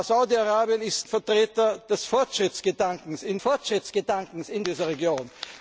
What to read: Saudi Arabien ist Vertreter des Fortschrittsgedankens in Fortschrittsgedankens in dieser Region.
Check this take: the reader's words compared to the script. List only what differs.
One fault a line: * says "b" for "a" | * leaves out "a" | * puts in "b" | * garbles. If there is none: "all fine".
all fine